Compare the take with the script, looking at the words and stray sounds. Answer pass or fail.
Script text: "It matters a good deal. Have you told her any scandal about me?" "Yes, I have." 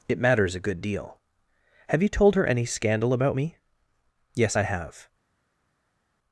pass